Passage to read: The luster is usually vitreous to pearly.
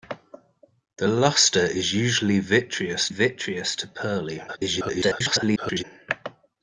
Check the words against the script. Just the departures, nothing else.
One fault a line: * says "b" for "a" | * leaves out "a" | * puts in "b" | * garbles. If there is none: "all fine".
* puts in "vitreous"
* garbles